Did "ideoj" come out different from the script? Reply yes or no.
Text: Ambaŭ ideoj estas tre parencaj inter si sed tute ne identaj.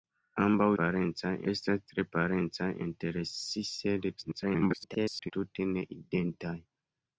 yes